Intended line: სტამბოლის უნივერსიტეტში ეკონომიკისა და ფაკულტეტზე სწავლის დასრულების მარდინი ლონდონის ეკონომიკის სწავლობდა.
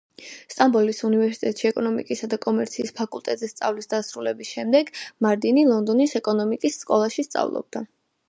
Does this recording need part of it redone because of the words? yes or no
yes